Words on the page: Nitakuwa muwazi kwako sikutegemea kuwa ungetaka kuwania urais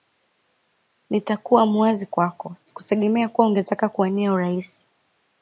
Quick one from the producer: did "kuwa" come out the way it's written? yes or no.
yes